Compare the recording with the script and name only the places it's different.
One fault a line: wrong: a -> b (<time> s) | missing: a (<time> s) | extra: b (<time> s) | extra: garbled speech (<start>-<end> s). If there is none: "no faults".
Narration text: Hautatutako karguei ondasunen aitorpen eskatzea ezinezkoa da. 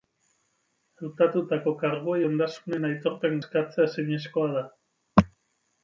no faults